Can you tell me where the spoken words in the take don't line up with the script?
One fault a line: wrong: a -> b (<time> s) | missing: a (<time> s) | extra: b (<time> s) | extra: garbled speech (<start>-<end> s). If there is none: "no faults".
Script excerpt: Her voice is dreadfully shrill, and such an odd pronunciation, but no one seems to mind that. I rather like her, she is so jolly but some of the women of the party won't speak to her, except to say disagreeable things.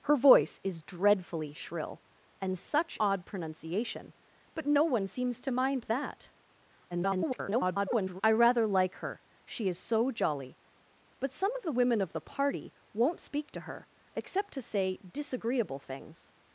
missing: an (3.0 s)
extra: garbled speech (6.9-8.2 s)